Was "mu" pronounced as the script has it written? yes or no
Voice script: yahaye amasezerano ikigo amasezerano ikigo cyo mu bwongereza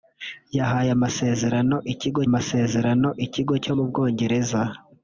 yes